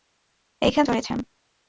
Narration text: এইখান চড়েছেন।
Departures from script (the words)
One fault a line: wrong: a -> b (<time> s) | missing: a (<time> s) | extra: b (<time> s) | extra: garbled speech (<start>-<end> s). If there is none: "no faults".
no faults